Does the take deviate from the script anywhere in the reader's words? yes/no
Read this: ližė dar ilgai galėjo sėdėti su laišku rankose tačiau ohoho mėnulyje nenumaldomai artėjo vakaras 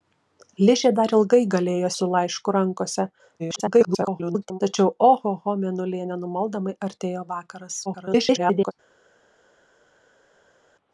yes